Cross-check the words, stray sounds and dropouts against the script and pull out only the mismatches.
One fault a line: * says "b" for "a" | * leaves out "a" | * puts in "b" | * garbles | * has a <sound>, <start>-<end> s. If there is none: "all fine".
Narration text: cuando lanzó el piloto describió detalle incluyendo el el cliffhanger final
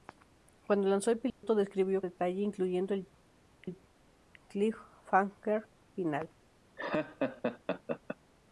* has a dropout, 1.3-1.4 s
* has a laugh, 6.8-8.2 s